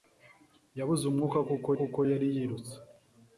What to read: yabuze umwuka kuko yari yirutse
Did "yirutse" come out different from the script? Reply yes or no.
no